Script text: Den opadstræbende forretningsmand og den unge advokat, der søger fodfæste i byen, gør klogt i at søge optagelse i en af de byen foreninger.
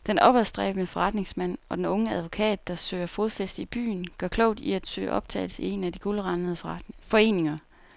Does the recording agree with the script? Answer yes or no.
no